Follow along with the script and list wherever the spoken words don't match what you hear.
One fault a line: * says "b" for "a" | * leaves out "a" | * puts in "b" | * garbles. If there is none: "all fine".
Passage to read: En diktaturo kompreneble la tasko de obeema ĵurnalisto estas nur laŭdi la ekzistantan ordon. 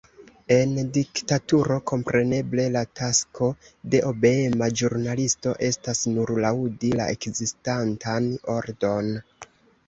all fine